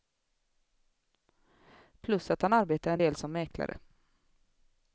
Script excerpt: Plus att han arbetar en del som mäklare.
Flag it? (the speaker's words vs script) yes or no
no